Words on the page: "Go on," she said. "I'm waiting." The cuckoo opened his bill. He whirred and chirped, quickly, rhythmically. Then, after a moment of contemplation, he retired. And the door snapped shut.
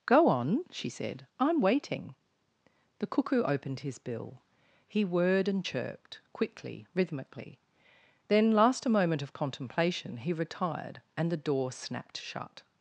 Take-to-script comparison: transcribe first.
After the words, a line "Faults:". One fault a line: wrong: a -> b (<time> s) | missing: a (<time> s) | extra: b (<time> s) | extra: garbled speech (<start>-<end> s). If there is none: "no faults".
"Go on," she said. "I'm waiting." The cuckoo opened his bill. He whirred and chirped, quickly, rhythmically. Then, last a moment of contemplation, he retired. And the door snapped shut.
Faults:
wrong: after -> last (8.5 s)